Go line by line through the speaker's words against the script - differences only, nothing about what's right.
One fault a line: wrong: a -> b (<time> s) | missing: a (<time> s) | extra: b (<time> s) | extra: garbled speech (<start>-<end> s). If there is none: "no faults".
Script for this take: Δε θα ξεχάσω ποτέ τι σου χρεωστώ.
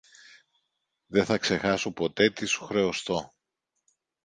no faults